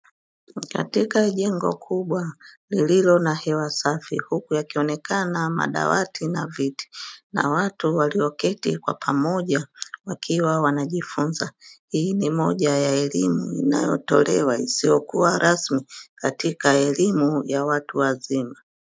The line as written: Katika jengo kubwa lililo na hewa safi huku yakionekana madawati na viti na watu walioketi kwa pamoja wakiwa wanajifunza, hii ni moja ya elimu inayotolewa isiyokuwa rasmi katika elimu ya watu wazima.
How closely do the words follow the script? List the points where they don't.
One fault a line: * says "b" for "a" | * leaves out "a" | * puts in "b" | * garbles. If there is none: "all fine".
all fine